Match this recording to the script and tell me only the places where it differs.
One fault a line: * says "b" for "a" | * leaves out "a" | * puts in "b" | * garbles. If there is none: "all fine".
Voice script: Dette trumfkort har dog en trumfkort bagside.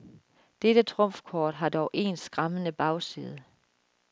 * says "skræmmende" for "trumfkort"